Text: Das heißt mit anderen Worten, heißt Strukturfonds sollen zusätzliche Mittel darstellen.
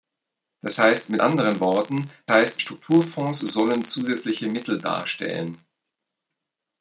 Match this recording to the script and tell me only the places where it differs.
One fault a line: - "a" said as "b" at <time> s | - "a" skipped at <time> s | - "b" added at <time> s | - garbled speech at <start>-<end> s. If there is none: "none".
none